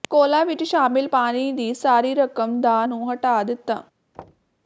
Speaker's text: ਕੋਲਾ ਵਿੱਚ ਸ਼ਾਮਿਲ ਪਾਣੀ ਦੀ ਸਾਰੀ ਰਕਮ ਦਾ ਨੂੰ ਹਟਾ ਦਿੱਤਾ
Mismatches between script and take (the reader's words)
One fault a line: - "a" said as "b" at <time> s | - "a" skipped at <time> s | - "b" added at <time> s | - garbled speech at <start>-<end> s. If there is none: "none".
none